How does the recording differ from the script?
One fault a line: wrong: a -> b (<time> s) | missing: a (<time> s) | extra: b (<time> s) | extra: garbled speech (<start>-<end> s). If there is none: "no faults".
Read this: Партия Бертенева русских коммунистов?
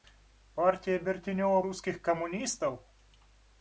no faults